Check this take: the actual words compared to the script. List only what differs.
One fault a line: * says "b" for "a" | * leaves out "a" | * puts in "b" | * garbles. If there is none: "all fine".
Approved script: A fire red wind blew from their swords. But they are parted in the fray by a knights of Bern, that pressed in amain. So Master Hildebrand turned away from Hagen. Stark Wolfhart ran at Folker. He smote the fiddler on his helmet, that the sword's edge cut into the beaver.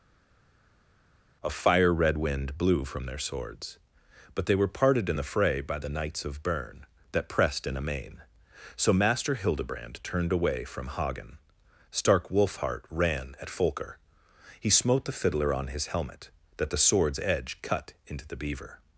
* says "were" for "are"
* says "the" for "a"